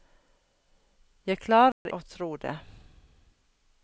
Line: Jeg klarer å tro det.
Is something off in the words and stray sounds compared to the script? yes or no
yes